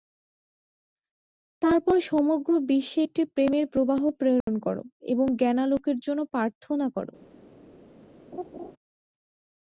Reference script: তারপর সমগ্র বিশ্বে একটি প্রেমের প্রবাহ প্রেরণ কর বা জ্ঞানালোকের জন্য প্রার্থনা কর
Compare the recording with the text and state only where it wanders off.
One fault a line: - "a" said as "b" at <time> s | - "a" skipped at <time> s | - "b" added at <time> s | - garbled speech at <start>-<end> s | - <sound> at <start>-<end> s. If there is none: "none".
- dropout at 4.4-4.5 s
- "বা" said as "এবং" at 5.1 s
- laugh at 8.3-8.7 s